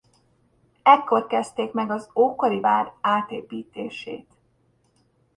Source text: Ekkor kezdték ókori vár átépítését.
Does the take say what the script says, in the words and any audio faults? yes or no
no